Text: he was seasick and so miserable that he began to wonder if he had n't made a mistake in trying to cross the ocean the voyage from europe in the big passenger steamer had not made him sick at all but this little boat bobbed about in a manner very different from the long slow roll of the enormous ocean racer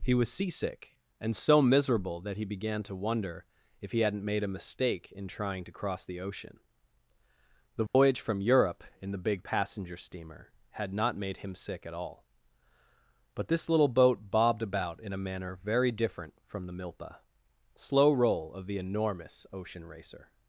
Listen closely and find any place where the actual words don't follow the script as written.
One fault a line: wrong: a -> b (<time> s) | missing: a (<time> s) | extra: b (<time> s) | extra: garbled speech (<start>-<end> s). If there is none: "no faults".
wrong: long -> milpa (16.7 s)